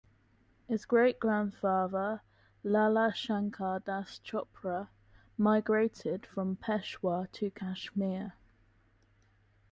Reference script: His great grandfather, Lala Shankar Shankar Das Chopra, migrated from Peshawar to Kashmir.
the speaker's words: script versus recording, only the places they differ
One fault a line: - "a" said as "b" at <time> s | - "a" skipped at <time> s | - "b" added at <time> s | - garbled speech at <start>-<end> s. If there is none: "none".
- "Shankar" skipped at 3.8 s